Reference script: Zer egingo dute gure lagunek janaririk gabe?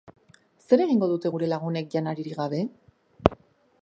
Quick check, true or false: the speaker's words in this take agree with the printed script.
true